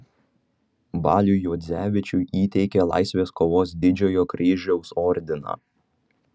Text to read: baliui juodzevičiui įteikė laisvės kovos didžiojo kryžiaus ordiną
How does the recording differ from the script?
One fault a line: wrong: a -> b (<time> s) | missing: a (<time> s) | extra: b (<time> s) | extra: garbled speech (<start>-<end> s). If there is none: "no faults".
no faults